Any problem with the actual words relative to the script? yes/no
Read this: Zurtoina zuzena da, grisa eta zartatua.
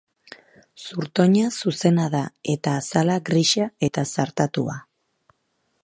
yes